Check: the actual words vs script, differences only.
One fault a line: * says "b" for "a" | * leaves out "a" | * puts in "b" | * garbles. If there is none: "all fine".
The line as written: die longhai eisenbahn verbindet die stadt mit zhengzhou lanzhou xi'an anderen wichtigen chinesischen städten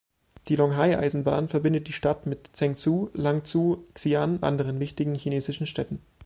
all fine